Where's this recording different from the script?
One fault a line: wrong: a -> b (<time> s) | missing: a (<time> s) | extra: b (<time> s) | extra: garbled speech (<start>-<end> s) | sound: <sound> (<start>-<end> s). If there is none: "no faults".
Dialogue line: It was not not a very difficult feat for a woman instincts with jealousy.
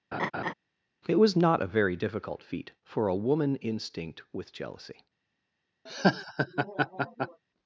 sound: laugh (0.1-0.5 s)
missing: not (1.6 s)
wrong: instincts -> instinct (3.5 s)
sound: laugh (5.9-7.4 s)